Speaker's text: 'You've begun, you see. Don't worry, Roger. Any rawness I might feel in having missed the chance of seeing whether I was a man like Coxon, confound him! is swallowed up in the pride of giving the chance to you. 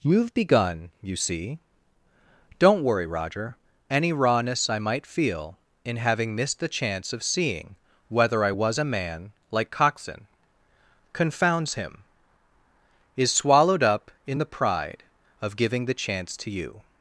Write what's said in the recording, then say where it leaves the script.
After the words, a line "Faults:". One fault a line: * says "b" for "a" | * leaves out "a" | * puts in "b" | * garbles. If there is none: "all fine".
'You've begun, you see. Don't worry, Roger. Any rawness I might feel in having missed the chance of seeing whether I was a man like Coxon, confounds him! is swallowed up in the pride of giving the chance to you.
Faults:
* says "confounds" for "confound"